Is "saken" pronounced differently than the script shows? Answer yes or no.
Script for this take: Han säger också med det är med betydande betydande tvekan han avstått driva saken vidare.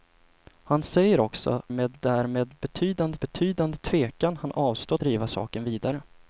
no